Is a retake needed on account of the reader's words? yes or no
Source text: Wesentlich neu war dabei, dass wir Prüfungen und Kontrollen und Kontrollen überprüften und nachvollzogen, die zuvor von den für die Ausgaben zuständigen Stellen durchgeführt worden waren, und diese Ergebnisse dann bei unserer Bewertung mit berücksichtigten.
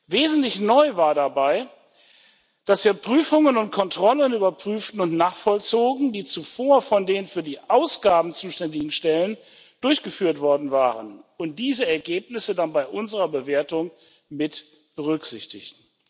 yes